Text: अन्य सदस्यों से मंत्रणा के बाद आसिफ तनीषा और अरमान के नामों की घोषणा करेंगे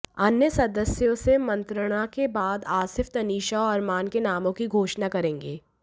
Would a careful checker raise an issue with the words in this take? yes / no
no